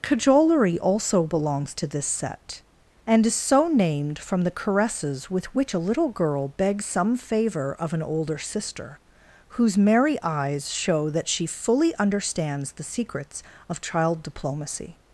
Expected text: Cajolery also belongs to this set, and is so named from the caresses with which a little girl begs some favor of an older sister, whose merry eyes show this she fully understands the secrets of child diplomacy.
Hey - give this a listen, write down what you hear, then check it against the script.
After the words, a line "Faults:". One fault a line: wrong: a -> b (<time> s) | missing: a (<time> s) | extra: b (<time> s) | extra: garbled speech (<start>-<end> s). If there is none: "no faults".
Cajolery also belongs to this set, and is so named from the caresses with which a little girl begs some favor of an older sister, whose merry eyes show that she fully understands the secrets of child diplomacy.
Faults:
wrong: this -> that (11.1 s)